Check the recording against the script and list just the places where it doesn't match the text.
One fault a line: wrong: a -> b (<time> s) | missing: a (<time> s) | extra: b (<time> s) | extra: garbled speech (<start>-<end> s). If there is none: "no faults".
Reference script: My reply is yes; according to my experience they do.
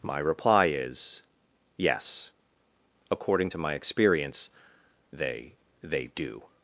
extra: they (5.8 s)